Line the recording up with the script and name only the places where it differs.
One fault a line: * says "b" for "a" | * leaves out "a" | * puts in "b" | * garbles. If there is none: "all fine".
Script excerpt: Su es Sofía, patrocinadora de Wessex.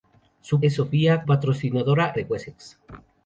all fine